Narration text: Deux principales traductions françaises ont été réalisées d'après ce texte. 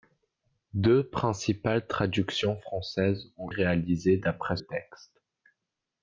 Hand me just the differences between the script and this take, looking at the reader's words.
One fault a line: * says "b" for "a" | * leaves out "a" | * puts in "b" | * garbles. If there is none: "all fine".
* leaves out "été"
* leaves out "ce"